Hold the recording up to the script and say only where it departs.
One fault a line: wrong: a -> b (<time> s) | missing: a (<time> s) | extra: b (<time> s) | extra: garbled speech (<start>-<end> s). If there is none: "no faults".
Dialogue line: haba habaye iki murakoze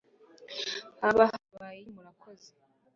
missing: iki (1.8 s)